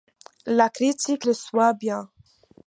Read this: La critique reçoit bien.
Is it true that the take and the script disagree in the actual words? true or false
false